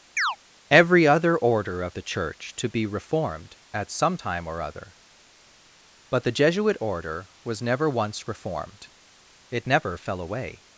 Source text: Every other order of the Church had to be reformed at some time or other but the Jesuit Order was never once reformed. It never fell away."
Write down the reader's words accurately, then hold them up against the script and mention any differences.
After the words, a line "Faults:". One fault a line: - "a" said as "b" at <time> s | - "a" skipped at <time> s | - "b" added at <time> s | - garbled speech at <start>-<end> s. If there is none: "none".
Every other order of the Church to be reformed at some time or other but the Jesuit Order was never once reformed. It never fell away."
Faults:
- "had" skipped at 2.5 s